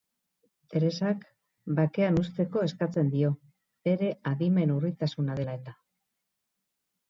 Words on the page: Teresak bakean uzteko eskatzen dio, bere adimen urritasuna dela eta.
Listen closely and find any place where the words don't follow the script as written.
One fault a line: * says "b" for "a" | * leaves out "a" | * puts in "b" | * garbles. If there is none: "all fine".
all fine